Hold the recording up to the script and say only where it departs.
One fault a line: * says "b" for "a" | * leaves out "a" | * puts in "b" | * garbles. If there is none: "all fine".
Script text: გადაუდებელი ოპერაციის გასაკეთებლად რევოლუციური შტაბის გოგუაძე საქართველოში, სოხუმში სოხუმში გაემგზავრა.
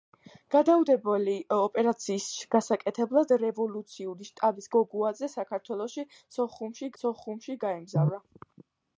all fine